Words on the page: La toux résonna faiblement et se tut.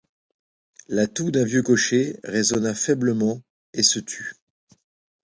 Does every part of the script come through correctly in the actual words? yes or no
no